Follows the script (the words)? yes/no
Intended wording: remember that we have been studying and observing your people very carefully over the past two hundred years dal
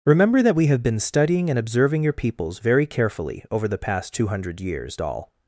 no